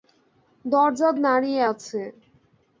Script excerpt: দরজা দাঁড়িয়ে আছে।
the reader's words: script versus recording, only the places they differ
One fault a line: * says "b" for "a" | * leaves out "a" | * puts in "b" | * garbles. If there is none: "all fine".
all fine